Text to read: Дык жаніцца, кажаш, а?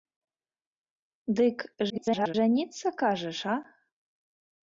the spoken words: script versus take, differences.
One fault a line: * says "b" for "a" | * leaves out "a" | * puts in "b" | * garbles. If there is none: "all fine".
* garbles